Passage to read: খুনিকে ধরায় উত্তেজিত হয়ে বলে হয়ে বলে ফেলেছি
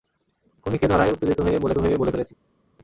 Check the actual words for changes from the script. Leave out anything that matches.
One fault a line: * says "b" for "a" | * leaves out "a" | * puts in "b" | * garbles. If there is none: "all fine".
all fine